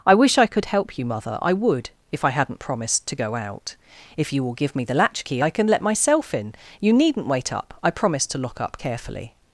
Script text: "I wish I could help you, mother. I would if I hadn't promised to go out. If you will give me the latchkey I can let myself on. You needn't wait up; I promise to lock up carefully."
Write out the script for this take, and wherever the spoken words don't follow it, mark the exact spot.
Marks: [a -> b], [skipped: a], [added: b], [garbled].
"I wish I could help you, mother. I would if I hadn't promised to go out. If you will give me the latchkey I can let myself [on. -> in] You needn't wait up; I promise to lock up carefully."